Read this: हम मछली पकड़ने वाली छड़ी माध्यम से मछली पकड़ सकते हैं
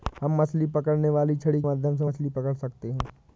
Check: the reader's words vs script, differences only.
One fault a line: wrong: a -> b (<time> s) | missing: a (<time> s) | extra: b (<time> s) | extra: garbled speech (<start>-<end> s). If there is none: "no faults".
no faults